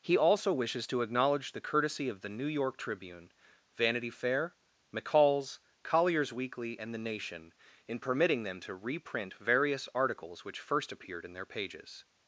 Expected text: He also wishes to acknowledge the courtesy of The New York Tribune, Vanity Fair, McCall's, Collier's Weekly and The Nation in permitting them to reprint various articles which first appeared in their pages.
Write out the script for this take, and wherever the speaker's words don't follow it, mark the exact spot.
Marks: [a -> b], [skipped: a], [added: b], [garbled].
He also wishes to acknowledge the courtesy of The New York Tribune, Vanity Fair, McCall's, Collier's Weekly and The Nation in permitting them to reprint various articles which first appeared in their pages.